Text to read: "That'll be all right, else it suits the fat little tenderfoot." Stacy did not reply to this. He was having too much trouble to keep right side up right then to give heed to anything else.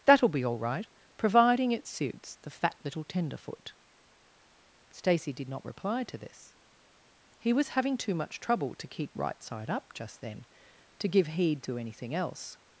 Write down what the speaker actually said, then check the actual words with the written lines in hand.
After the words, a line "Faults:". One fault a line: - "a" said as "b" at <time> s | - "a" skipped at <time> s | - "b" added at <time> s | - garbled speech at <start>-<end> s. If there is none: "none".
"That'll be all right, providing it suits the fat little tenderfoot." Stacy did not reply to this. He was having too much trouble to keep right side up just then to give heed to anything else.
Faults:
- "else" said as "providing" at 1.2 s
- "right" said as "just" at 9.9 s